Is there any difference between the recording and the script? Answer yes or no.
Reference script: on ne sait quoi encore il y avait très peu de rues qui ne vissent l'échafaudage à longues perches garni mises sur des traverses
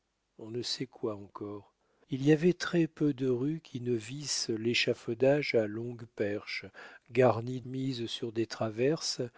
no